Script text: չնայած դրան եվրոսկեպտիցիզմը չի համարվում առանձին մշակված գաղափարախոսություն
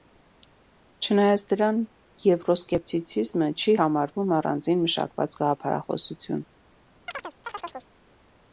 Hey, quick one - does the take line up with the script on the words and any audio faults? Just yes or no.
no